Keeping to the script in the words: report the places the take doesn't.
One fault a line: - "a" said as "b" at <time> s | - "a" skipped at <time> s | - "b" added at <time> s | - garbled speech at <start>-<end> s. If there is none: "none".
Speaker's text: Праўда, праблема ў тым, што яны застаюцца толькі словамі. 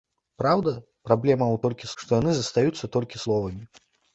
- "тым" said as "толькі" at 1.7 s